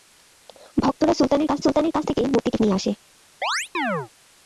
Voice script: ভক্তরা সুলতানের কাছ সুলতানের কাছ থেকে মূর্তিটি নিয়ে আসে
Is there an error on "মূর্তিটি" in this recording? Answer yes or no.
no